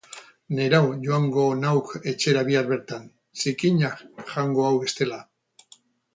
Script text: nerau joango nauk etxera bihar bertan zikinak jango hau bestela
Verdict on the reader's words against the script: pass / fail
pass